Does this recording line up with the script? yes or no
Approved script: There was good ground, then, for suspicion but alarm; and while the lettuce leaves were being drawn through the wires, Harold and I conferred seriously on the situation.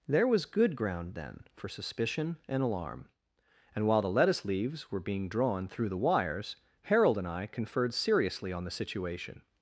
no